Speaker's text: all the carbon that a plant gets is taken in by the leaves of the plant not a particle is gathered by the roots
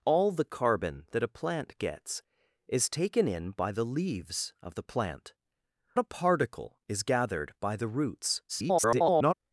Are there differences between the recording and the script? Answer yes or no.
yes